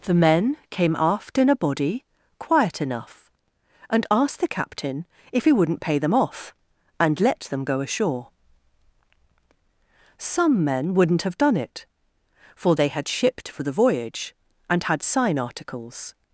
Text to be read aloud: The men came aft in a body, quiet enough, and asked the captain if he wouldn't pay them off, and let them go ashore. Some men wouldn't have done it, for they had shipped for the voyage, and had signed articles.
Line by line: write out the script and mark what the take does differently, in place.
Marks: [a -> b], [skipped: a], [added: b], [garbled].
The men came aft in a body, quiet enough, and asked the captain if he wouldn't pay them off, and let them go ashore. Some men wouldn't have done it, for they had shipped for the voyage, and had [signed -> sign] articles.